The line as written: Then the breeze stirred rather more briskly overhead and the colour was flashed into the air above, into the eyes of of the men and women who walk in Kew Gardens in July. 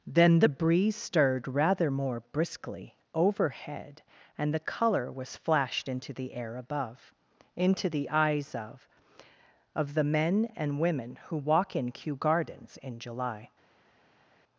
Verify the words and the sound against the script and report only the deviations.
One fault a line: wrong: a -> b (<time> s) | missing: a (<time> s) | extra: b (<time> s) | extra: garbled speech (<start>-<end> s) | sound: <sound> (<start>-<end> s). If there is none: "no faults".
no faults